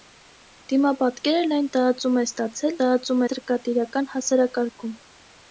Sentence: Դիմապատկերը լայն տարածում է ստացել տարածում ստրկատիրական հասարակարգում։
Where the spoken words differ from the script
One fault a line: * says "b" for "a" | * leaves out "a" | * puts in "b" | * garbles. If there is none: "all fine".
all fine